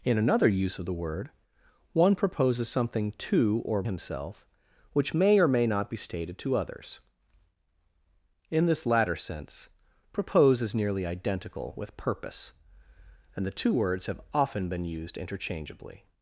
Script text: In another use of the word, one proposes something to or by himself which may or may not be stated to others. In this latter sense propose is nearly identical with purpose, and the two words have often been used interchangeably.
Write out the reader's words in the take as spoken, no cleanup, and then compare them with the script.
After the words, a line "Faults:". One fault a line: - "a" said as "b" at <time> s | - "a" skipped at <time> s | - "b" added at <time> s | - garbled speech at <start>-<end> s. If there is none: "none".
In another use of the word, one proposes something to or himself which may or may not be stated to others. In this latter sense propose is nearly identical with purpose, and the two words have often been used interchangeably.
Faults:
- "by" skipped at 3.8 s